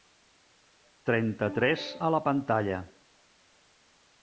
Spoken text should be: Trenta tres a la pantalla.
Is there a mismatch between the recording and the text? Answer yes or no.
no